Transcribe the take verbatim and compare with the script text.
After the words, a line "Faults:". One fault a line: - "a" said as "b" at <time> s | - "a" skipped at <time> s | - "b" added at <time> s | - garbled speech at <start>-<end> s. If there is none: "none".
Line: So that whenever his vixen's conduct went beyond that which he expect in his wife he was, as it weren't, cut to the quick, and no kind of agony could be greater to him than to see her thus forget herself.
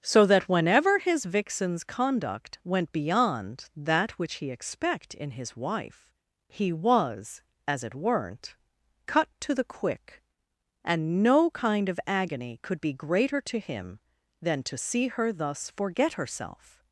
So that whenever his vixen's conduct went beyond that which he expect in his wife he was, as it weren't, cut to the quick, and no kind of agony could be greater to him than to see her thus forget herself.
Faults:
none